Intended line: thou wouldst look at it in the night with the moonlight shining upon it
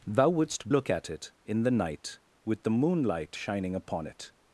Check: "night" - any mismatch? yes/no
no